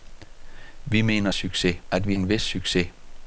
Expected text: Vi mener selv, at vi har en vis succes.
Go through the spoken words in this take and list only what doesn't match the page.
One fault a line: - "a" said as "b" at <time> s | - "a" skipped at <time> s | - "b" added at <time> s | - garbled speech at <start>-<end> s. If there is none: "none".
- "selv" said as "succes" at 1.3 s
- "har" skipped at 2.1 s